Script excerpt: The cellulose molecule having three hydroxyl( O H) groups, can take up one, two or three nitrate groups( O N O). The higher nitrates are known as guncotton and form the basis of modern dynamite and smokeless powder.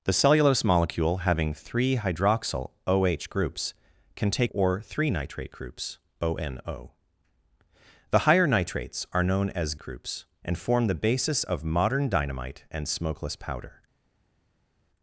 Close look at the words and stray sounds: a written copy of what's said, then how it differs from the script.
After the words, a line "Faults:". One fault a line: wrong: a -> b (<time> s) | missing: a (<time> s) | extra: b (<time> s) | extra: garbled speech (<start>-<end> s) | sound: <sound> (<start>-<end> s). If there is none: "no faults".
The cellulose molecule having three hydroxyl( O H) groups, can take or three nitrate groups( O N O). The higher nitrates are known as groups and form the basis of modern dynamite and smokeless powder.
Faults:
missing: up one two (4.5 s)
wrong: guncotton -> groups (9.8 s)